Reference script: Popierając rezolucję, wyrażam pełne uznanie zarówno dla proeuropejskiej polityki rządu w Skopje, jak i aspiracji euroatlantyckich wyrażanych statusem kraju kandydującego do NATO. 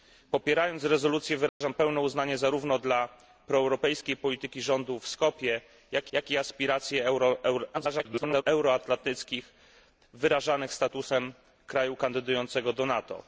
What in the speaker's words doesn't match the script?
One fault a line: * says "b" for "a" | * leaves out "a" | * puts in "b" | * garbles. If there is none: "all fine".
* puts in "jak"
* garbles